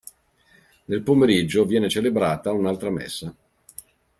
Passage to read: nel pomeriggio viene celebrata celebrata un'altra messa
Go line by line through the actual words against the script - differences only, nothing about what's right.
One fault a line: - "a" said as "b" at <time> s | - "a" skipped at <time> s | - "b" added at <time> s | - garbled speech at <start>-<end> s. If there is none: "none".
- "celebrata" skipped at 2.5 s